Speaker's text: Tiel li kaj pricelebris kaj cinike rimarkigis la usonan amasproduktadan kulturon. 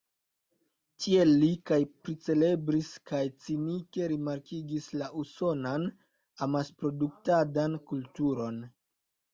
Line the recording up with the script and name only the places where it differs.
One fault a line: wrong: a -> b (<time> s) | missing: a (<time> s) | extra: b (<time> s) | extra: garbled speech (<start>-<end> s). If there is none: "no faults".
no faults